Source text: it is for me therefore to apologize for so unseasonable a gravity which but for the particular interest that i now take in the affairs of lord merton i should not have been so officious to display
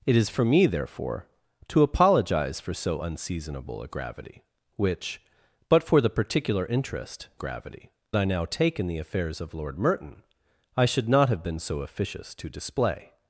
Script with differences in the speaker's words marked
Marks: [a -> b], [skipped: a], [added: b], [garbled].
it is for me therefore to apologize for so unseasonable a gravity which but for the particular interest [that -> gravity] i now take in the affairs of lord merton i should not have been so officious to display